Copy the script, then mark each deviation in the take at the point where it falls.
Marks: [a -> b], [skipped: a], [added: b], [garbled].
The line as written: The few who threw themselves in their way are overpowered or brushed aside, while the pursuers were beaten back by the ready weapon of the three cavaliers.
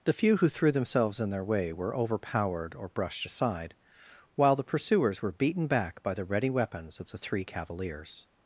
The few who threw themselves in their way [are -> were] overpowered or brushed aside, while the pursuers were beaten back by the ready [weapon -> weapons] of the three cavaliers.